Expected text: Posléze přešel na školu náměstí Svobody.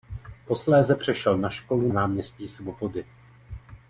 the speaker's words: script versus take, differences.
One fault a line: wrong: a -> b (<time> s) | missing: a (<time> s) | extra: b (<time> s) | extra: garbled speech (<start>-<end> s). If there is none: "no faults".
no faults